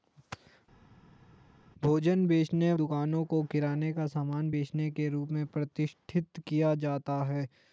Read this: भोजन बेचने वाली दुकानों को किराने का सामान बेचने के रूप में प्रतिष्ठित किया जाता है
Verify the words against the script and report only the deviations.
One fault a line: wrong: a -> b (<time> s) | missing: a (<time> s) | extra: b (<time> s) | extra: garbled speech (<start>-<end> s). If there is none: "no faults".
missing: वाली (2.7 s)